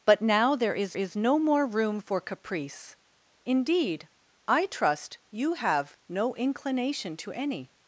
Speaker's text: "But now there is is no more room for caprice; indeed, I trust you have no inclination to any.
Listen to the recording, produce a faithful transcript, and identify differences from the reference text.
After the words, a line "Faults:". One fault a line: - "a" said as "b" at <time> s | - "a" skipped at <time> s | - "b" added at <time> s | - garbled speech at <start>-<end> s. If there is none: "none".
"But now there is is no more room for caprice; indeed, I trust you have no inclination to any.
Faults:
none